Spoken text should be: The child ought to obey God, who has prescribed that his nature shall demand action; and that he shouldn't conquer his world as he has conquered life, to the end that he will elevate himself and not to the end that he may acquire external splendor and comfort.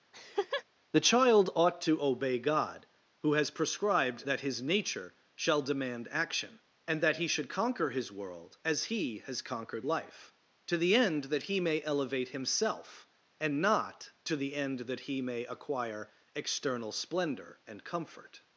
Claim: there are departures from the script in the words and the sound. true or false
true